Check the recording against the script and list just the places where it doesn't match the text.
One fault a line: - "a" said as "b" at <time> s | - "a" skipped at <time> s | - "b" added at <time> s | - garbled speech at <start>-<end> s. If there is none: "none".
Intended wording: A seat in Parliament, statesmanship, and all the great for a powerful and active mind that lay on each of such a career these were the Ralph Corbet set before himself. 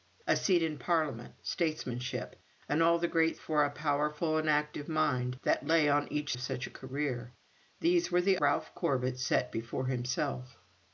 none